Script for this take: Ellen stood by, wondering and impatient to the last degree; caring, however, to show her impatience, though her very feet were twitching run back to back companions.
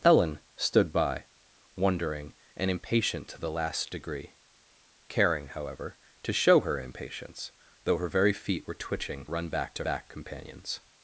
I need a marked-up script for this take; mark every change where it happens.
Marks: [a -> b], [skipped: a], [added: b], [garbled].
Ellen stood by, wondering and impatient to the last degree; caring, however, to show her impatience, though her very feet were twitching run back to back companions.